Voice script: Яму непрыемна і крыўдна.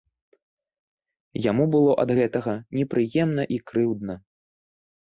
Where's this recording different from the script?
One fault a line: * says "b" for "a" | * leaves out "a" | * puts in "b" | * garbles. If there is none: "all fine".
* puts in "было ад гэтага"